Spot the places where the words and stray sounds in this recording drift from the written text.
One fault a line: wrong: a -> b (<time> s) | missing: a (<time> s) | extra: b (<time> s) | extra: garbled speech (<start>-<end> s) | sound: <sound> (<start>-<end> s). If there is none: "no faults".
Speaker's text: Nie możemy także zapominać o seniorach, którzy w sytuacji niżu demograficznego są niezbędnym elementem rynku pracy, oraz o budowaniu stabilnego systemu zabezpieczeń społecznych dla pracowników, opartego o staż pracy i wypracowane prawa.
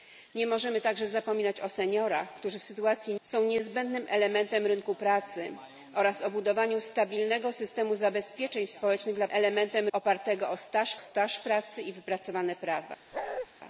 missing: niżu demograficznego (3.1 s)
wrong: pracowników -> elementem (9.3 s)
extra: staż (11.0 s)
sound: bark (13.1-13.5 s)